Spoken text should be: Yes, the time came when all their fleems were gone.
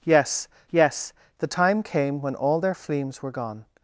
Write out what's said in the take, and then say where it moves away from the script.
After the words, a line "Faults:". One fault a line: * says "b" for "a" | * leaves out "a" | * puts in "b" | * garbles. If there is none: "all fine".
Yes yes, the time came when all their fleems were gone.
Faults:
* puts in "yes"